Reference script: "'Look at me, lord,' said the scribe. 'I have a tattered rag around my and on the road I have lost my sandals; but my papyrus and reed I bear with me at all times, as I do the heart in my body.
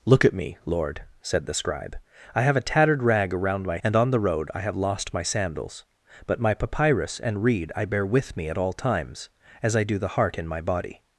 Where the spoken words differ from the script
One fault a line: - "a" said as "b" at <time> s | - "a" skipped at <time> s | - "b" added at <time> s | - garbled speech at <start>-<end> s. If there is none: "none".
none